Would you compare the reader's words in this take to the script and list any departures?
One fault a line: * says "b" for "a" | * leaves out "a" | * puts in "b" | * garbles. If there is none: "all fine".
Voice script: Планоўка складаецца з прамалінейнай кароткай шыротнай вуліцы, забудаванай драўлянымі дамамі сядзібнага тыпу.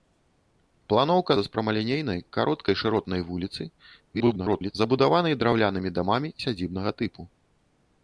* leaves out "складаецца"
* garbles